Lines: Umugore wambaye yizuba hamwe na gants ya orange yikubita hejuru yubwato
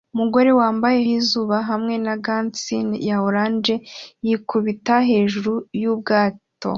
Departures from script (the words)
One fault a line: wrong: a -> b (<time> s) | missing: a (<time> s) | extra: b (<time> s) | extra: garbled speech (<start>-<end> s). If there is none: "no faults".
no faults